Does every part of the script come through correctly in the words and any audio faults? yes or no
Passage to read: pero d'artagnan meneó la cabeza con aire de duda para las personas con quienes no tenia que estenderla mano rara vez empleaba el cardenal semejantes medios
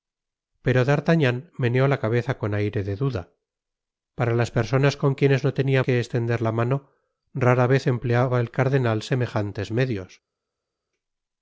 yes